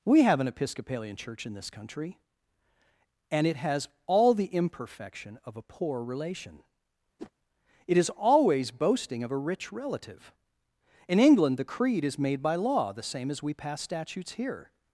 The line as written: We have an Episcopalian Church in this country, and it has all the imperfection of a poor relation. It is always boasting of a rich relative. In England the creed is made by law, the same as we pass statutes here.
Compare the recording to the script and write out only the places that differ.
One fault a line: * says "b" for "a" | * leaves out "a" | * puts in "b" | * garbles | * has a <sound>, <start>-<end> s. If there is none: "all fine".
* has a whoosh, 7.2-7.3 s